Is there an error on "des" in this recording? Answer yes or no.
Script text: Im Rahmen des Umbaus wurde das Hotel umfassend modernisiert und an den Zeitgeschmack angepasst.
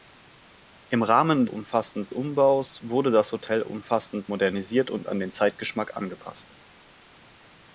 yes